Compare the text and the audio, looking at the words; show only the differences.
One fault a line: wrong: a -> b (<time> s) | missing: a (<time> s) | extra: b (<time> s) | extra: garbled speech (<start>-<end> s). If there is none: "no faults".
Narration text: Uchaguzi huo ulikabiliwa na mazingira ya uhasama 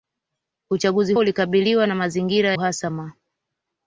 missing: huo (1.1 s)
missing: ya (2.6 s)